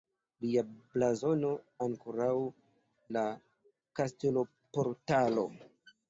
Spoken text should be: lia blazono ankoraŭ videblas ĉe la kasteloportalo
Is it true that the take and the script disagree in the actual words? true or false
true